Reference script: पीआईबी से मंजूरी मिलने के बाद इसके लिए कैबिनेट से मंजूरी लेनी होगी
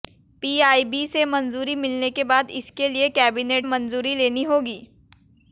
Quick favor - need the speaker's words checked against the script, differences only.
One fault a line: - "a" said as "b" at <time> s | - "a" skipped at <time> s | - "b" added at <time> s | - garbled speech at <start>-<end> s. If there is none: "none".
- "से" skipped at 3.7 s